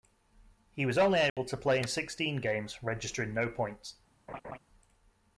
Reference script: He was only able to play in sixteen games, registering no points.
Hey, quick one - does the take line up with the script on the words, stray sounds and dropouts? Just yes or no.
no